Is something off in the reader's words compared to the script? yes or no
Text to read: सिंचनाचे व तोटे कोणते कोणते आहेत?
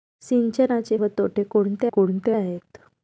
no